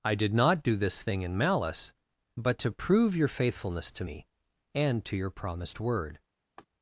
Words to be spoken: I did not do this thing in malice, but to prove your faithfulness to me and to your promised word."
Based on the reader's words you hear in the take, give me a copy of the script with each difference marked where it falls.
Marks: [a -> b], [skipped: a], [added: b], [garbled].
I did not do this thing in malice, but to prove your faithfulness to me and to your promised word."